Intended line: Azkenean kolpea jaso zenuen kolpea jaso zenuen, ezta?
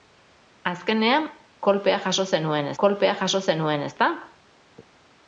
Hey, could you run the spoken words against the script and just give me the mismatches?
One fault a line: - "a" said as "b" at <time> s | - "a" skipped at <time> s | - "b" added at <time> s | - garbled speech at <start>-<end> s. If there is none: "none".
none